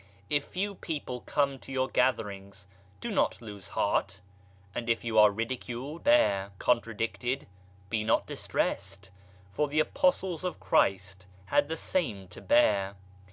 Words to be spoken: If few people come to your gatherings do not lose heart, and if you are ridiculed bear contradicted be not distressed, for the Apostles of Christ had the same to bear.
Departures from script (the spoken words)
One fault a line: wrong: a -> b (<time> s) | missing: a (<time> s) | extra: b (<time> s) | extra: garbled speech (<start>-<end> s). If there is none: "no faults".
no faults